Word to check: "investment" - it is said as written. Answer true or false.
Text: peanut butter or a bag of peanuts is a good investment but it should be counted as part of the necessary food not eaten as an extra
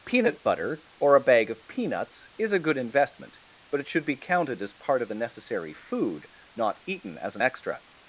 true